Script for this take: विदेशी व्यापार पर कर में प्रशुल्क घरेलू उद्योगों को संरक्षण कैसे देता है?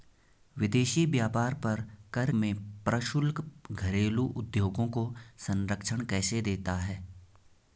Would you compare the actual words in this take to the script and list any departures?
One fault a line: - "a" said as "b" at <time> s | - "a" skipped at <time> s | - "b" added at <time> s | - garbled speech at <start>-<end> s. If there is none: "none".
none